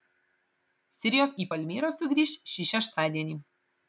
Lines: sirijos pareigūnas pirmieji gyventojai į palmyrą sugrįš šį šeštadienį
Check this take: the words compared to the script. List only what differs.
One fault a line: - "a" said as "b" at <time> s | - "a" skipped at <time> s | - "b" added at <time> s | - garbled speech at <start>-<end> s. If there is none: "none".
- "pareigūnas pirmieji gyventojai" skipped at 1.4 s